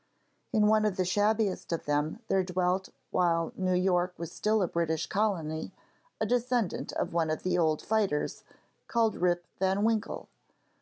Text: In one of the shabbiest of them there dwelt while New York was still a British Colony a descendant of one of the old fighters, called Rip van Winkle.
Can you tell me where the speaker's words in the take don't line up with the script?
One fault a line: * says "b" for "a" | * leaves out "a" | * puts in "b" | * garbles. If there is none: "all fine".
all fine